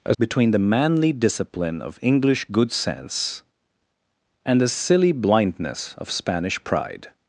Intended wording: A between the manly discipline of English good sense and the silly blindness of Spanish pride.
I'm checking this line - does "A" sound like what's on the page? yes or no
yes